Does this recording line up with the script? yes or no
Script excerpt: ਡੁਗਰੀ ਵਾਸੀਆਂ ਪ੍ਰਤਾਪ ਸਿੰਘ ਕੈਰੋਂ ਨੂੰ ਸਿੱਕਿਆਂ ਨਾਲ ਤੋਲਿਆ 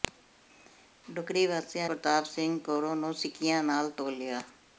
yes